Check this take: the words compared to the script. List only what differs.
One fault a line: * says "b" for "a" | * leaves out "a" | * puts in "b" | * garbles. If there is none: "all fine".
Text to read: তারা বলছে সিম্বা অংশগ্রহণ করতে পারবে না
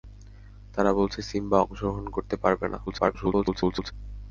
* garbles